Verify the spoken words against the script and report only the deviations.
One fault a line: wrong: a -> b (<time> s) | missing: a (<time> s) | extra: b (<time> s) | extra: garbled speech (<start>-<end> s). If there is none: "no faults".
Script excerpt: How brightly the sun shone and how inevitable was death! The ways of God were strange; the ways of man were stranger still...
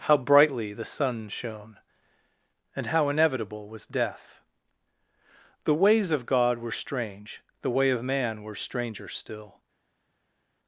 wrong: ways -> way (7.7 s)